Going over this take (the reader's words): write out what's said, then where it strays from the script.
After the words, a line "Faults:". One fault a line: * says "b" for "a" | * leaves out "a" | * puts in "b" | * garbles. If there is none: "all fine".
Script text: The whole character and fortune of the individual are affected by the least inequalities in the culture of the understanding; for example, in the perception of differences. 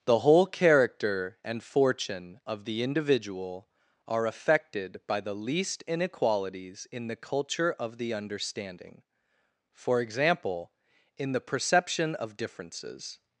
The whole character and fortune of the individual are affected by the least inequalities in the culture of the understanding; for example, in the perception of differences.
Faults:
all fine